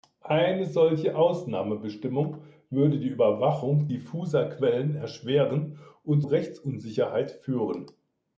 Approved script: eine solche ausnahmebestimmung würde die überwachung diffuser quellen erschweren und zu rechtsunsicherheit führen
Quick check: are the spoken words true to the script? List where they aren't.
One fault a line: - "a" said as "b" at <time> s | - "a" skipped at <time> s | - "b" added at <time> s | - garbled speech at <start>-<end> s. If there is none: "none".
- "zu" skipped at 6.2 s